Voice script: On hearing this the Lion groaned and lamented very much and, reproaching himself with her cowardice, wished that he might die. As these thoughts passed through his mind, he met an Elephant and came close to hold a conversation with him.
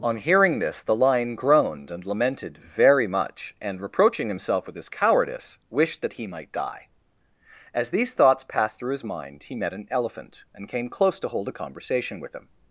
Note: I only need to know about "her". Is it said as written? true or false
false